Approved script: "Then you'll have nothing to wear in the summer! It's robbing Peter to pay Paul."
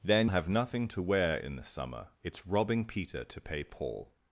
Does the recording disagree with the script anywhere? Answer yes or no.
yes